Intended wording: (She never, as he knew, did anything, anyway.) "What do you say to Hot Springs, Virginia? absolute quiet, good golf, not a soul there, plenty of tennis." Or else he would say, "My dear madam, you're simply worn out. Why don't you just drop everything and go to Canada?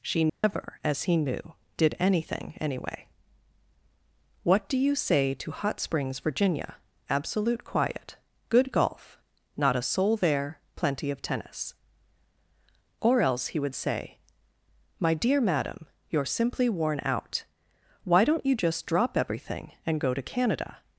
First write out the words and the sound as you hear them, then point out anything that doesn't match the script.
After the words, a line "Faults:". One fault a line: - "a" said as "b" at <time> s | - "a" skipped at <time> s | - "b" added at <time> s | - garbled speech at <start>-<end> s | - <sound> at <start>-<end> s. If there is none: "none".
(She never, as he knew, did anything, anyway.) "What do you say to Hot Springs, Virginia? absolute quiet, good golf, not a soul there, plenty of tennis." Or else he would say, "My dear madam, you're simply worn out. Why don't you just drop everything and go to Canada?
Faults:
- dropout at 0.3-0.4 s